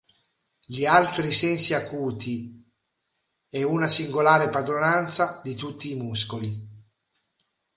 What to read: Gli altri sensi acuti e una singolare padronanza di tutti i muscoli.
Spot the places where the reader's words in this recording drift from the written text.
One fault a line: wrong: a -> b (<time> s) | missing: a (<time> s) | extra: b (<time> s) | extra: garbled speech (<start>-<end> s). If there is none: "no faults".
no faults